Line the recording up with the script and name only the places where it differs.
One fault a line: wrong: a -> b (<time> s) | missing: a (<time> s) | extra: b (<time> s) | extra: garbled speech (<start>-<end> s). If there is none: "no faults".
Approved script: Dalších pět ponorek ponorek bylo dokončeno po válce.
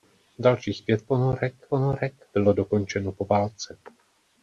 no faults